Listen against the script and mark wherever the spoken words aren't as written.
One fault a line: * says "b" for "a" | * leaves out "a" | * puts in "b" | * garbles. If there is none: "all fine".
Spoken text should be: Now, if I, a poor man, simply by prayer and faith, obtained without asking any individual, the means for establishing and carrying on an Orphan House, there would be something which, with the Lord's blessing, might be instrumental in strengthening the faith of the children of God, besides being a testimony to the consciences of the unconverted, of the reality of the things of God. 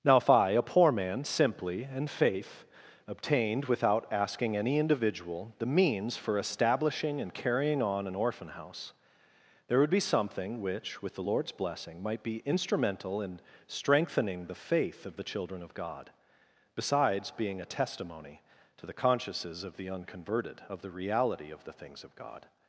* leaves out "by prayer"